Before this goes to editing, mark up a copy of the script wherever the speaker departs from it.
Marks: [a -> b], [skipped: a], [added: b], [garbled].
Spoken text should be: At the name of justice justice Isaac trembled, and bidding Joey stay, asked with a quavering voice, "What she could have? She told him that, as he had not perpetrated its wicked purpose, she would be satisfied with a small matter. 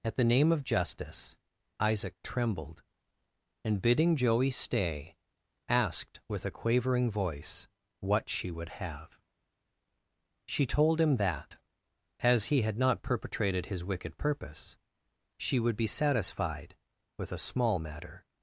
At the name of justice [skipped: justice] Isaac trembled, and bidding Joey stay, asked with a quavering voice, "What she [could -> would] have? She told him that, as he had not perpetrated [its -> his] wicked purpose, she would be satisfied with a small matter.